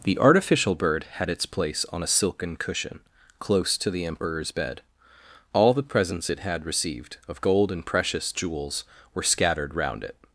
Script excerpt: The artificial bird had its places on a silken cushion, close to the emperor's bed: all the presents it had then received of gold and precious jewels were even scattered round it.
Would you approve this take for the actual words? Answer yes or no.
no